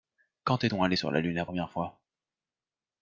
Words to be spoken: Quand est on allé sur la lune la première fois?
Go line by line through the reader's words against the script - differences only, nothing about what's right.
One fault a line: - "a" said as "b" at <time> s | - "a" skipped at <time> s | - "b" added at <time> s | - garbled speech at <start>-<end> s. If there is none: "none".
none